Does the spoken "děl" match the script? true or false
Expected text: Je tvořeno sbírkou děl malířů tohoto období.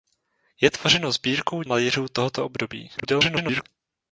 false